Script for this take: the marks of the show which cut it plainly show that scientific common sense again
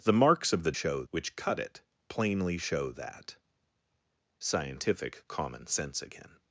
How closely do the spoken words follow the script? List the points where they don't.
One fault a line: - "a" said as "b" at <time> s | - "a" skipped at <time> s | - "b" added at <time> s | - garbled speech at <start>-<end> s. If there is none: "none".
none